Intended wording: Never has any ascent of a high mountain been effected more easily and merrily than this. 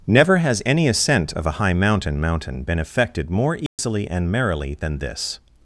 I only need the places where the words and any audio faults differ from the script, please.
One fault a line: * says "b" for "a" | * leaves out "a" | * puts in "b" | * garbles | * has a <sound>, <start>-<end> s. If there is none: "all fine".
* puts in "mountain"
* has a dropout, 3.7-3.8 s